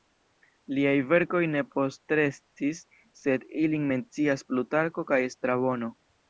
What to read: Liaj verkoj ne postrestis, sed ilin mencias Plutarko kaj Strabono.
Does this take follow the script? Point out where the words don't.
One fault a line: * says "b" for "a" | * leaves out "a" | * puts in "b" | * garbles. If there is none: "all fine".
all fine